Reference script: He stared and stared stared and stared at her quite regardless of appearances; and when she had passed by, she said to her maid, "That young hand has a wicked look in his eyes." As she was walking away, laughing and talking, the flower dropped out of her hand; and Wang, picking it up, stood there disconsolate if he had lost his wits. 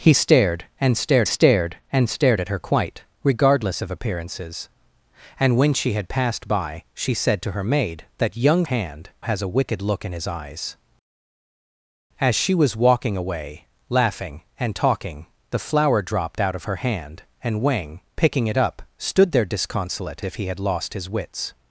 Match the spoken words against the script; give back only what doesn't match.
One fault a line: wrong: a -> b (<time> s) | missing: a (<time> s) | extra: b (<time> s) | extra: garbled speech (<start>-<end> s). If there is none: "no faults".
no faults